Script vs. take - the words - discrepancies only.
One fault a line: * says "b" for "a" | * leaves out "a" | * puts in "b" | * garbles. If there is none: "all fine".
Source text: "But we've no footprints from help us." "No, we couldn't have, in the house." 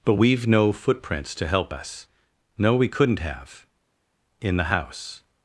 * says "to" for "from"